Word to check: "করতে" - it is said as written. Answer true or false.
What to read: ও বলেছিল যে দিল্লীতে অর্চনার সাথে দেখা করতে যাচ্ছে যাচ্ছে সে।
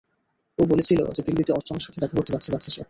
true